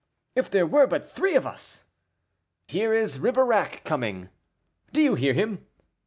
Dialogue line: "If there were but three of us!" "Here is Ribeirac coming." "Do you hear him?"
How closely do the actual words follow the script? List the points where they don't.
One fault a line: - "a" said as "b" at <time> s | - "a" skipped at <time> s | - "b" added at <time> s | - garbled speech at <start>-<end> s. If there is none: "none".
none